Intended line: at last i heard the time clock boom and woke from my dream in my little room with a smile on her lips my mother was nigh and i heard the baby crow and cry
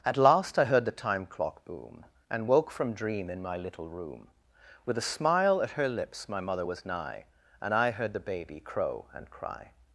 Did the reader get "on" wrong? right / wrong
wrong